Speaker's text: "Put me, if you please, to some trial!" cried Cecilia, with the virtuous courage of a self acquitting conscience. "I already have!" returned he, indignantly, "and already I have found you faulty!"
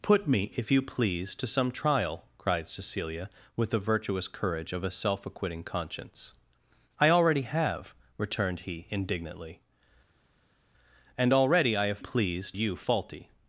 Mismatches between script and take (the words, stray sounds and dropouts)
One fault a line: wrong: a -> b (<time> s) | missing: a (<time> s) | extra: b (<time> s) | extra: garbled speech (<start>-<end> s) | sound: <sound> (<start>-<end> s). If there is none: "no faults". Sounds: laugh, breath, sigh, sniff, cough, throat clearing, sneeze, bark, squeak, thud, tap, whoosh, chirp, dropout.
wrong: found -> please (12.0 s)